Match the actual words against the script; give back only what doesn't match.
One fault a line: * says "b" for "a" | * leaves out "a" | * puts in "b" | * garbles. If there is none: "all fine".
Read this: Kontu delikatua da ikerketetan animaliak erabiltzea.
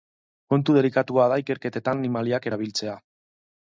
all fine